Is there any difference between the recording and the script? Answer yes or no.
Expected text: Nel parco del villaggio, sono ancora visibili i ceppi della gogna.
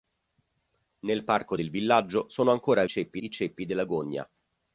yes